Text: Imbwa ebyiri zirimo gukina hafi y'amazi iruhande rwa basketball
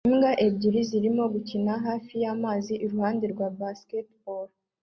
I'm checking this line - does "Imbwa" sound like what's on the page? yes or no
yes